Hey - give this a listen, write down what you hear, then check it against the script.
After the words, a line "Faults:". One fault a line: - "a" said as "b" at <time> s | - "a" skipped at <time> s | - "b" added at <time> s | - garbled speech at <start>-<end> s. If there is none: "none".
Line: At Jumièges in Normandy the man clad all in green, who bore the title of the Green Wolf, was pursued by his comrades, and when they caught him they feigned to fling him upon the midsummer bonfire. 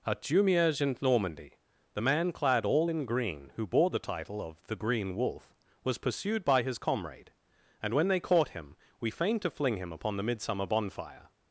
At Jumièges in Normandy the man clad all in green, who bore the title of the Green Wolf, was pursued by his comrade, and when they caught him we feigned to fling him upon the midsummer bonfire.
Faults:
- "comrades" said as "comrade" at 6.8 s
- "they" said as "we" at 9.0 s